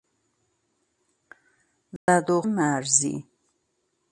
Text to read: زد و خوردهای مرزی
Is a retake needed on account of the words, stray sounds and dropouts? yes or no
yes